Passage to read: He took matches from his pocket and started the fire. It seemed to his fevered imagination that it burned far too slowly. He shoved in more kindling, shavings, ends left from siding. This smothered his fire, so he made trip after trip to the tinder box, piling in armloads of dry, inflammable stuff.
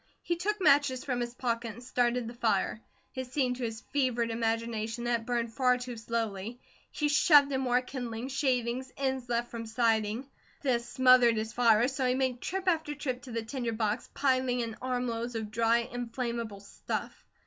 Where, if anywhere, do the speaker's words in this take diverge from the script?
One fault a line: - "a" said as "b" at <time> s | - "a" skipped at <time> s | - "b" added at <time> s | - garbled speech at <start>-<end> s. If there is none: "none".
none